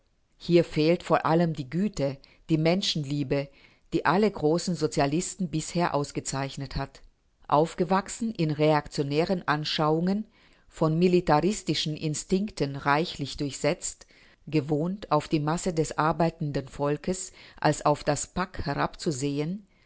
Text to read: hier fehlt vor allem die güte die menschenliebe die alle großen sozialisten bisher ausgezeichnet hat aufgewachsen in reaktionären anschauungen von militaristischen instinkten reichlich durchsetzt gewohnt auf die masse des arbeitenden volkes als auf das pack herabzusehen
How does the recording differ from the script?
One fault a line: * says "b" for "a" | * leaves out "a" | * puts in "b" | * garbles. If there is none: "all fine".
all fine